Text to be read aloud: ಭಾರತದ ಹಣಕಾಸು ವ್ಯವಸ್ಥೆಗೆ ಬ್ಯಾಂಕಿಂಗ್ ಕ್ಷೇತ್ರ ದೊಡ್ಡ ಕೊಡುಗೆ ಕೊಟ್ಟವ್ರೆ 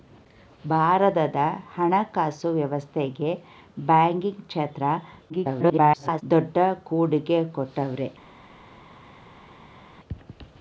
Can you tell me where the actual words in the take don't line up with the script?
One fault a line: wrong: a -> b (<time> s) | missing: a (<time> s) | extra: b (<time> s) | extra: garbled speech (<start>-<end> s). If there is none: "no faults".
extra: garbled speech (5.3-6.2 s)